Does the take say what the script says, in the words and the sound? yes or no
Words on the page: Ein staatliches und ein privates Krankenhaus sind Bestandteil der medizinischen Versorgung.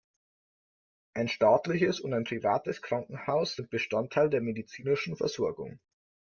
yes